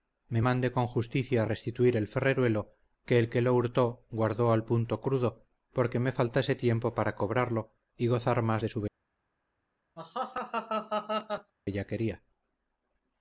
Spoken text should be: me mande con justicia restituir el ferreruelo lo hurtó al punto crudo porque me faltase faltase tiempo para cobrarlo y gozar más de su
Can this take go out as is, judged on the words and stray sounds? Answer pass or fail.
fail